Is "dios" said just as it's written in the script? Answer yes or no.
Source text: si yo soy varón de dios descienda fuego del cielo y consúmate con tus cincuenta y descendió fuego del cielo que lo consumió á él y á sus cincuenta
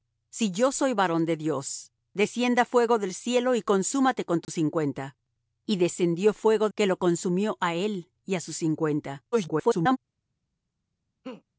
yes